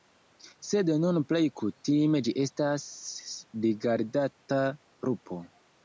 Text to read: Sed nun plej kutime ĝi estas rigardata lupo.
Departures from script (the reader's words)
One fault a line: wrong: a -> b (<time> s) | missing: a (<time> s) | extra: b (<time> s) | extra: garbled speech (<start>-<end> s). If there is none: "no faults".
no faults